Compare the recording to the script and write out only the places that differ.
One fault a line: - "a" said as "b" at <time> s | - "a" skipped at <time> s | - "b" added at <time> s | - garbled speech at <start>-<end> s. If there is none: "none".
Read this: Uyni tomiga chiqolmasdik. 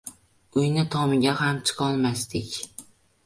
- "ham" added at 1.4 s